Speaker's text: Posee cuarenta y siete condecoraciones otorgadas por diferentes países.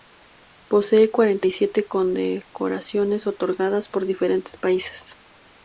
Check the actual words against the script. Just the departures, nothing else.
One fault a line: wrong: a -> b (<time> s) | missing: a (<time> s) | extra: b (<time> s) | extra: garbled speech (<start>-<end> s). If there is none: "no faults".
no faults